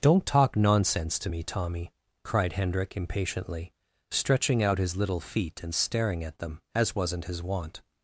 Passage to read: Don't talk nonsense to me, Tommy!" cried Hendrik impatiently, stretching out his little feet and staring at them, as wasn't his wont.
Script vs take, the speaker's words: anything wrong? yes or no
no